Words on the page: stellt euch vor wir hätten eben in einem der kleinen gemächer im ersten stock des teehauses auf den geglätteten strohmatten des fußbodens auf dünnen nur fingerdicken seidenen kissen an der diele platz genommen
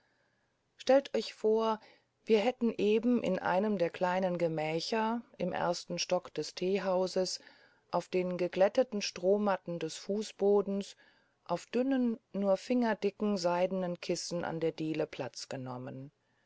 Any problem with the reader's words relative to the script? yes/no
no